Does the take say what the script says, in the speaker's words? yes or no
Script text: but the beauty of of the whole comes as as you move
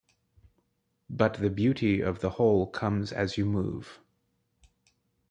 no